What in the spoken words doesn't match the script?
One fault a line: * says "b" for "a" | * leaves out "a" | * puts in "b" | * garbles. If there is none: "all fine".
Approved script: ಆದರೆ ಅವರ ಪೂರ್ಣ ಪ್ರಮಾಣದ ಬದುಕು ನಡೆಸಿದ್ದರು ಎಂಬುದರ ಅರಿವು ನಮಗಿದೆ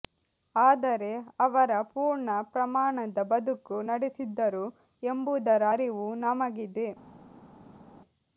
all fine